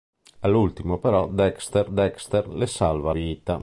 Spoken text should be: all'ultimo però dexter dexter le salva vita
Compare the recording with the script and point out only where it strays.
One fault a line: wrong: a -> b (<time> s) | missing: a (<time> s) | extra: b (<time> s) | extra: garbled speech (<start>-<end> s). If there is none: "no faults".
no faults